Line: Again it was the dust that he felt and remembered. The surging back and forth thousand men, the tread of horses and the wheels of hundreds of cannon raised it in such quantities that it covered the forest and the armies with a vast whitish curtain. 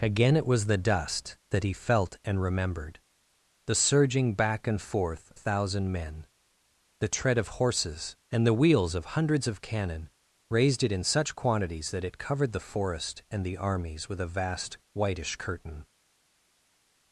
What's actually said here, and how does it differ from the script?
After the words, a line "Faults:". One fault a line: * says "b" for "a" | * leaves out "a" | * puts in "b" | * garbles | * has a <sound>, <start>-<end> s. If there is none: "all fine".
Again it was the dust that he felt and remembered. The surging back and forth thousand men, the tread of horses and the wheels of hundreds of cannon raised it in such quantities that it covered the forest and the armies with a vast whitish curtain.
Faults:
all fine